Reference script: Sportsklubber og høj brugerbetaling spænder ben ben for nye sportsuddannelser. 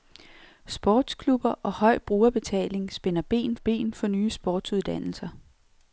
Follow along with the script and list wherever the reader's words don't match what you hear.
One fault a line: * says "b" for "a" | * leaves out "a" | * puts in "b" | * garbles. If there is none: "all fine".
all fine